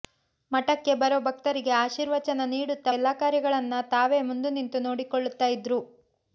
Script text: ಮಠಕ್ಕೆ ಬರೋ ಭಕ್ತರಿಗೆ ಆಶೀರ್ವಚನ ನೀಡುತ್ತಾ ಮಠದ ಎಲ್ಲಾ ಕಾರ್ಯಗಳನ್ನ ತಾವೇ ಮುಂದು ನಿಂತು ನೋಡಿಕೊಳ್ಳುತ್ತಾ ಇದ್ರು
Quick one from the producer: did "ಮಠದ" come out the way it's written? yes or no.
no